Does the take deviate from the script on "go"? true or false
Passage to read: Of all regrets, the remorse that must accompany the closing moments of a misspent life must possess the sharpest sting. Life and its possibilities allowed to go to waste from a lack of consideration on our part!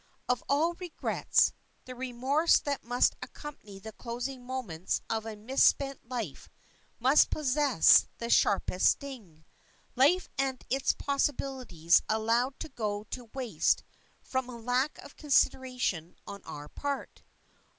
false